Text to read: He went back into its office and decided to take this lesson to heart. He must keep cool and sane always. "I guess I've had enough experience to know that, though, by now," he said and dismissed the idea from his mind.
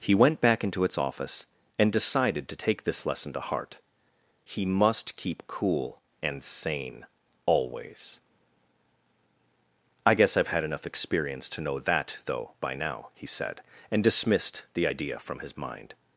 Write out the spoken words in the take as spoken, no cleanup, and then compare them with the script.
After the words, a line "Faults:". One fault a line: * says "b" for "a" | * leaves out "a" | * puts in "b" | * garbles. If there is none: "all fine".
He went back into its office and decided to take this lesson to heart. He must keep cool and sane always. "I guess I've had enough experience to know that, though, by now," he said and dismissed the idea from his mind.
Faults:
all fine